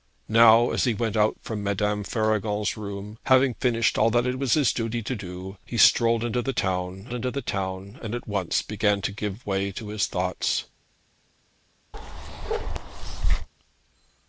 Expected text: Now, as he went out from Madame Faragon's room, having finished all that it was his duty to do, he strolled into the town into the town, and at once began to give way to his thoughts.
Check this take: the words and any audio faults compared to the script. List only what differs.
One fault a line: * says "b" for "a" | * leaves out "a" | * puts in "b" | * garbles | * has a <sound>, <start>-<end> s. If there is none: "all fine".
* has a bark, 11.9-13.5 s